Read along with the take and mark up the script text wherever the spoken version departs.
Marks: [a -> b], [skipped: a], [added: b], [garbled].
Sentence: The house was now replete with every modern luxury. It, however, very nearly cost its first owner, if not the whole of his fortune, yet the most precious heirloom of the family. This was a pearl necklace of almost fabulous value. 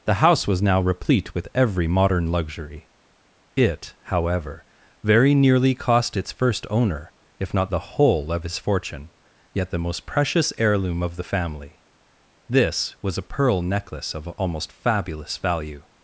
The house was now replete with every modern luxury. It, however, very nearly cost its first owner, if not the whole of his fortune, yet the most precious heirloom of the family. This was a pearl necklace of almost fabulous value.